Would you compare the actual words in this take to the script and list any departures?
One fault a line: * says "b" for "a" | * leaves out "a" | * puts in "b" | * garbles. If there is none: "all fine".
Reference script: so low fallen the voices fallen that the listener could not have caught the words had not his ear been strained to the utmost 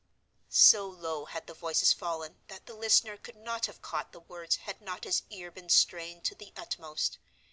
* says "had" for "fallen"